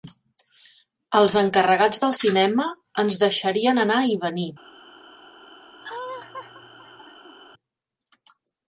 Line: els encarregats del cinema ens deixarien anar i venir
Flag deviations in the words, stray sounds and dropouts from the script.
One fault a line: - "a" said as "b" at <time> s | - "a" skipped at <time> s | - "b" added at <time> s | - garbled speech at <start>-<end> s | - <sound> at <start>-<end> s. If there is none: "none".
- laugh at 5.8-7.4 s